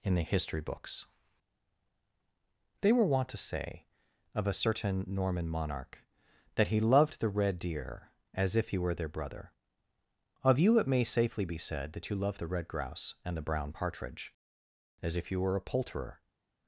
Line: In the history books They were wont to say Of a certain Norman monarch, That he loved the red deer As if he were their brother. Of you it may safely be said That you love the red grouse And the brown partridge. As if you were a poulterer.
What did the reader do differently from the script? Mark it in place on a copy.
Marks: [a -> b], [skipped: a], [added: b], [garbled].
In the history books They were wont to say Of a certain Norman monarch, That he loved the red deer As if he were their brother. Of you it may safely be said That you love the red grouse And the brown partridge. As if you were a poulterer.